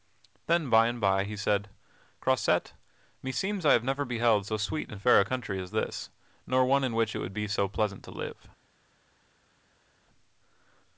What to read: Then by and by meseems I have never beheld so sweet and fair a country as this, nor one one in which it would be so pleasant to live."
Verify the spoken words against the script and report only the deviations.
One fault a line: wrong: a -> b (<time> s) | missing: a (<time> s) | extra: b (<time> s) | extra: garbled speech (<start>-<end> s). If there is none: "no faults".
extra: he said Croisette (1.2 s)
missing: one (6.8 s)